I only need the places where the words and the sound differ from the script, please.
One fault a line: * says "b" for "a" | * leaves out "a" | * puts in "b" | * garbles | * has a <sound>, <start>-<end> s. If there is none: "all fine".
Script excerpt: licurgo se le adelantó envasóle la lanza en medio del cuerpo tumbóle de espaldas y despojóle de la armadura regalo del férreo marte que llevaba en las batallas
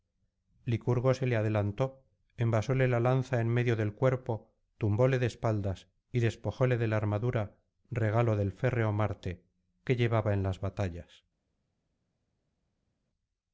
all fine